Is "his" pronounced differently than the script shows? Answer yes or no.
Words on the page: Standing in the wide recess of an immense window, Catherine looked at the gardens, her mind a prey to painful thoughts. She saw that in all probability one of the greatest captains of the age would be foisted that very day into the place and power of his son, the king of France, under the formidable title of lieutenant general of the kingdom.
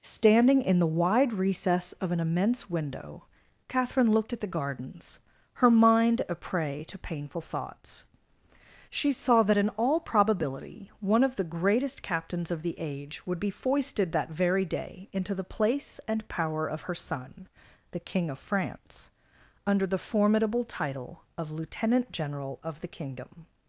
yes